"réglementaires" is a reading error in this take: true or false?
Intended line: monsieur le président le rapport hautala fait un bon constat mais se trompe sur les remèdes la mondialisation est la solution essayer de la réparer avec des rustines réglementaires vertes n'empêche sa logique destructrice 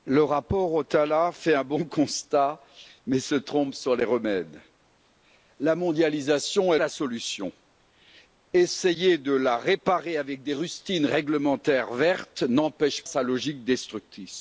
false